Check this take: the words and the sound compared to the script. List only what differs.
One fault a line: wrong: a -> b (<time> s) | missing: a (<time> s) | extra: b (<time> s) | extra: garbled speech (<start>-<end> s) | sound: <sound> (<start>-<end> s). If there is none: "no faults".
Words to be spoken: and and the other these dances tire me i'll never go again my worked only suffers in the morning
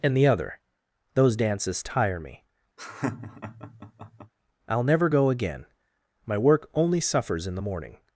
missing: and (0.2 s)
wrong: these -> those (1.1 s)
sound: laugh (2.8-4.3 s)
wrong: worked -> work (6.4 s)